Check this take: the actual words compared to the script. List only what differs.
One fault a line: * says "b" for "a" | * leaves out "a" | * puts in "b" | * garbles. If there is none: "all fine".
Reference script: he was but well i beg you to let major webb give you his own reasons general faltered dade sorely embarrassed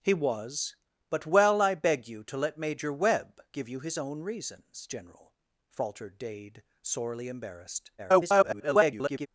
* garbles